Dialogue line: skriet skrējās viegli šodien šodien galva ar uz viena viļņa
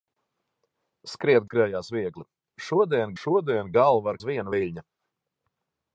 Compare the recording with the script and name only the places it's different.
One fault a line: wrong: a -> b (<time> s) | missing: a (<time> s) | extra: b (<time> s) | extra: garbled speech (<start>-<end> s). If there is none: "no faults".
no faults